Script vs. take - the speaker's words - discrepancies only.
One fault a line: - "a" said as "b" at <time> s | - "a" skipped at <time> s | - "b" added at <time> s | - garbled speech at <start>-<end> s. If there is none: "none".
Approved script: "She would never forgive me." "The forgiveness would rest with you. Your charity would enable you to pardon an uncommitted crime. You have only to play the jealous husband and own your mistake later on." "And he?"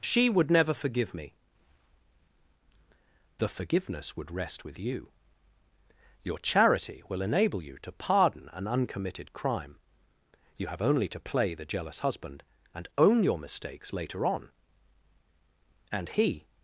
- "would" said as "will" at 7.1 s
- "mistake" said as "mistakes" at 13.4 s